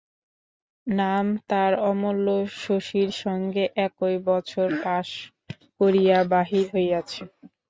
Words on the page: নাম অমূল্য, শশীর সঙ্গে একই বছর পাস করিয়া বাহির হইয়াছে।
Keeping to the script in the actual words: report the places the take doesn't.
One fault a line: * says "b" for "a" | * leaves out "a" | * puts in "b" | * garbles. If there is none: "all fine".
* puts in "তার"